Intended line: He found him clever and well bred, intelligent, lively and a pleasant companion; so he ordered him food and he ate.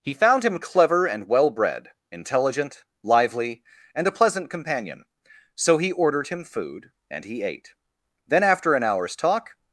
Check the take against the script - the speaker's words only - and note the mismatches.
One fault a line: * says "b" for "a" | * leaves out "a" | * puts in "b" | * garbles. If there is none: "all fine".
* puts in "Then after an hour's talk"